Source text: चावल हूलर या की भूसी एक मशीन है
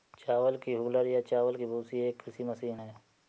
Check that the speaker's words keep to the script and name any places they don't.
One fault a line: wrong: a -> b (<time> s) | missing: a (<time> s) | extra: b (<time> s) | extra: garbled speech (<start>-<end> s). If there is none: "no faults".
extra: की (0.6 s)
extra: चावल (1.2 s)
extra: कृषि (2.2 s)